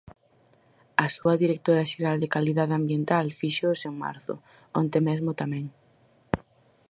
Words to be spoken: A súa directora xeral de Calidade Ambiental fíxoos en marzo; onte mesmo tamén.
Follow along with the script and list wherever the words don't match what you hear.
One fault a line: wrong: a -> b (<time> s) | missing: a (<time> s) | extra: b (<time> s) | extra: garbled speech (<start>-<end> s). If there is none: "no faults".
no faults